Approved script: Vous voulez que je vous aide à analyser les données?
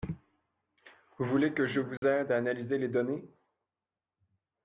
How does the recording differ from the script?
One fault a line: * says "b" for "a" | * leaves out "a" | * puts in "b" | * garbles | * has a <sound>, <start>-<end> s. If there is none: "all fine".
* has a dropout, 2.0-2.0 s